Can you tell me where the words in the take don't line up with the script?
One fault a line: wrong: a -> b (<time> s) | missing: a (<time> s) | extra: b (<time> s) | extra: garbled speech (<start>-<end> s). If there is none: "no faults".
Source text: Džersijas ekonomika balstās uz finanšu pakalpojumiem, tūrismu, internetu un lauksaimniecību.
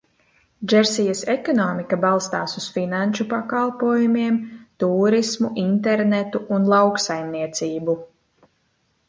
no faults